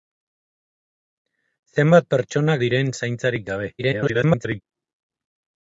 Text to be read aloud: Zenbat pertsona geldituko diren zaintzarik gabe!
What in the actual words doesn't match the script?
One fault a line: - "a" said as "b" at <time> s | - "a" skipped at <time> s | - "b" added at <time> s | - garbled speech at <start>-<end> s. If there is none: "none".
- "geldituko" skipped at 2.5 s
- garbled speech at 3.8-4.6 s